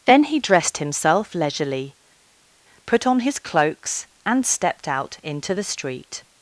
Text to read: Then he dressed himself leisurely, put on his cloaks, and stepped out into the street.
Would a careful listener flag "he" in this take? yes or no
no